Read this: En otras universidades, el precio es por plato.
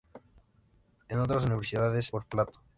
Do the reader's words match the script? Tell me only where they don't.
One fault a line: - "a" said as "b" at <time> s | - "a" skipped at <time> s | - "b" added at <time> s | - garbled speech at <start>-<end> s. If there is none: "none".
- "el precio es" skipped at 2.1 s